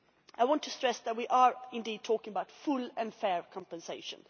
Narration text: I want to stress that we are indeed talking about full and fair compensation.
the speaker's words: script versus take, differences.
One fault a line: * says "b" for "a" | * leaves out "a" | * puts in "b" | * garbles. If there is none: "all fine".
all fine